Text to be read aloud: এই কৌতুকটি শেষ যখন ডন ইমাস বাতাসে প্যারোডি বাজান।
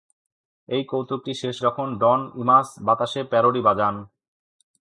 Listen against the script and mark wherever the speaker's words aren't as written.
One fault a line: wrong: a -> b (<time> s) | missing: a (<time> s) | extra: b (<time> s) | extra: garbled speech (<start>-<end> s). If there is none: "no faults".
no faults